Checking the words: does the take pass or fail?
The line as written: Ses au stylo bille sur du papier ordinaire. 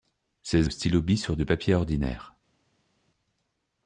pass